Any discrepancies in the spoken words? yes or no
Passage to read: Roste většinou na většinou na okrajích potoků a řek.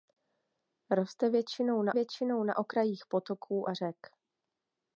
no